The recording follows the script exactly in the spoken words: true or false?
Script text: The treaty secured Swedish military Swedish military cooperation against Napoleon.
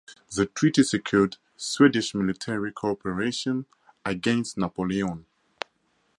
false